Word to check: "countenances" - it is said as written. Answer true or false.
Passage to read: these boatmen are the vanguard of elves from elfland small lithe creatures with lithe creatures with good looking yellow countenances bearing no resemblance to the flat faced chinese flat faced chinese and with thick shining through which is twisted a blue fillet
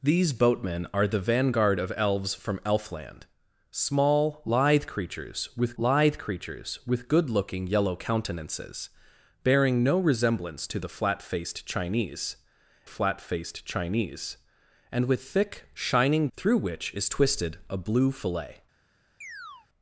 true